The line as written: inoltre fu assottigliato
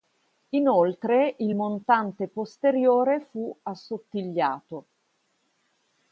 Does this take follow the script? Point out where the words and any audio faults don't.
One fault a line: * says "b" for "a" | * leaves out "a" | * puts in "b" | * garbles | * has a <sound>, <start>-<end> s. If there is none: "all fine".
* puts in "il montante posteriore"